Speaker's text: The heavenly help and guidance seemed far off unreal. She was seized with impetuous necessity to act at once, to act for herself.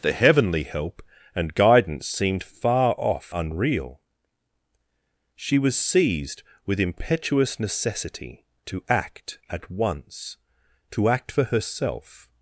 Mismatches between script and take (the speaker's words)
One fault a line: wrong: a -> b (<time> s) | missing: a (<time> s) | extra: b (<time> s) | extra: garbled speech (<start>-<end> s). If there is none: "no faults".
no faults